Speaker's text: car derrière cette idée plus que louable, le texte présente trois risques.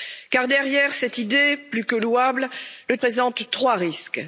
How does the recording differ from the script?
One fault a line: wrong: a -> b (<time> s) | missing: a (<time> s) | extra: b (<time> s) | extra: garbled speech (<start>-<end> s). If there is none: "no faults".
missing: texte (3.0 s)